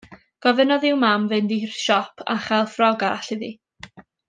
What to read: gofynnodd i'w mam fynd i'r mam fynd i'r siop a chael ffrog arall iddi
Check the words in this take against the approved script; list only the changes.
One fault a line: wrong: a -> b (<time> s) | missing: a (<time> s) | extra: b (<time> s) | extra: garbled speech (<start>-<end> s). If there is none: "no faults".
missing: mam fynd i'r (1.8 s)